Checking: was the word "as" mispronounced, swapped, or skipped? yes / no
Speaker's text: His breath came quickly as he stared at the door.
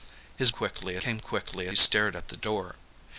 yes